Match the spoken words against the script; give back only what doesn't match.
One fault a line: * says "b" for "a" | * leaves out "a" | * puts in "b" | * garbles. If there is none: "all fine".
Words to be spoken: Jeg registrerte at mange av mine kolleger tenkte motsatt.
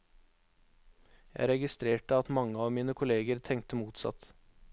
all fine